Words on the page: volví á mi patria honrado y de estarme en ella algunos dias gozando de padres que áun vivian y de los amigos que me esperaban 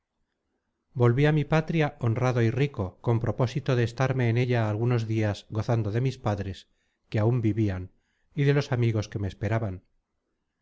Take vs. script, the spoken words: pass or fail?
fail